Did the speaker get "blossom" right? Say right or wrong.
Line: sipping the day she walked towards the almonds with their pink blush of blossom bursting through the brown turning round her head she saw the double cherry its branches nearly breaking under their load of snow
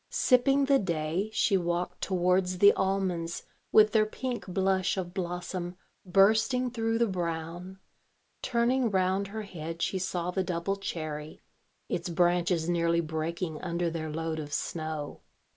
right